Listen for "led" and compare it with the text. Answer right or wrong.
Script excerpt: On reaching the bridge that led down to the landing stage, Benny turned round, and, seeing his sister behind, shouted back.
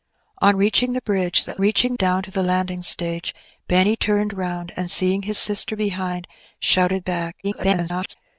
wrong